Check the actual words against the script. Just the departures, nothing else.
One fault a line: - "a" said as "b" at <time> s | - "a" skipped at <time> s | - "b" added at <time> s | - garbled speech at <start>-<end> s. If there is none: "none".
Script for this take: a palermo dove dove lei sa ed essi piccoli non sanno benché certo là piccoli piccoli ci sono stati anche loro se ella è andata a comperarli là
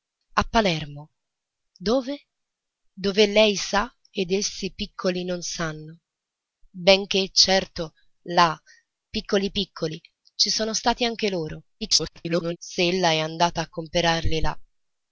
- garbled speech at 11.8-12.6 s